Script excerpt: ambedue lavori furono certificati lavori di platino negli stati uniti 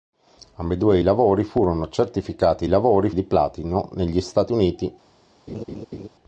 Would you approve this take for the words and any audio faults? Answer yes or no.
no